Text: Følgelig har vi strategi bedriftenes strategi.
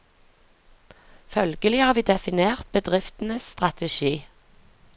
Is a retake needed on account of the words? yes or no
yes